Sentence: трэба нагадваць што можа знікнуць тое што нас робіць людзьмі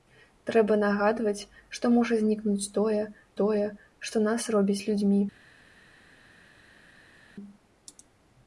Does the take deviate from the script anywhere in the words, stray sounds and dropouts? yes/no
yes